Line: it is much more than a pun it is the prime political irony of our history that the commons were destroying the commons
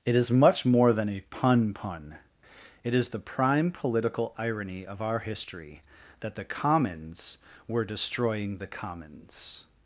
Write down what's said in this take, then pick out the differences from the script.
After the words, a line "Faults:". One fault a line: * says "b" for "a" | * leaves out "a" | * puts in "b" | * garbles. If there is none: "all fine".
it is much more than a pun pun it is the prime political irony of our history that the commons were destroying the commons
Faults:
* puts in "pun"